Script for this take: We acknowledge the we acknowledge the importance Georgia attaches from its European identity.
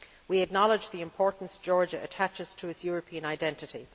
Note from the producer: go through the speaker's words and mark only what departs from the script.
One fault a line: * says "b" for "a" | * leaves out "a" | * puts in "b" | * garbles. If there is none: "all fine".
* leaves out "we acknowledge the"
* says "to" for "from"